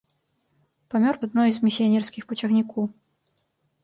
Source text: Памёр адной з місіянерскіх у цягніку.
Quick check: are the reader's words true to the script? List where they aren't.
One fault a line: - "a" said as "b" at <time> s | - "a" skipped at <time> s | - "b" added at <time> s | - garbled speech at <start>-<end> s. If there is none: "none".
none